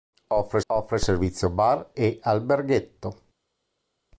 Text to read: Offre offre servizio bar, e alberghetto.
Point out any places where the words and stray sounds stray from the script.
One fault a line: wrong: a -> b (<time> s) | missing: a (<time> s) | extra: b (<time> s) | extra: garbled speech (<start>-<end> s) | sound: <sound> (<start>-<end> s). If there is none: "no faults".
no faults